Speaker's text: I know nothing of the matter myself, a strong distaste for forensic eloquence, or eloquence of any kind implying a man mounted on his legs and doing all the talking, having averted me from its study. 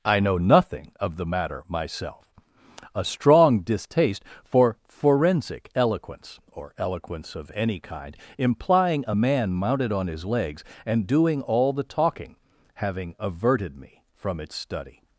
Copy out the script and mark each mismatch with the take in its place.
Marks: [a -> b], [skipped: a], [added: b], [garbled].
I know nothing of the matter myself, a strong distaste for forensic eloquence, or eloquence of any kind implying a man mounted on his legs and doing all the talking, having averted me from its study.